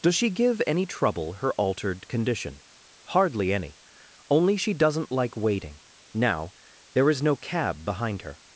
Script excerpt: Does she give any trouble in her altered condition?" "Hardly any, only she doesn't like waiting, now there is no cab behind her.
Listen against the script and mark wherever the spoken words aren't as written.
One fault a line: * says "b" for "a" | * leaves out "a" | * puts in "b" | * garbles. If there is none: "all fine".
* leaves out "in"